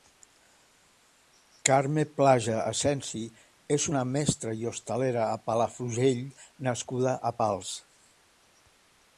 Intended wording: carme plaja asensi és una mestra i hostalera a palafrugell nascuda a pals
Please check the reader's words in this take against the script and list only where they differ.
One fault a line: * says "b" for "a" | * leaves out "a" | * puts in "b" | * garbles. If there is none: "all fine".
all fine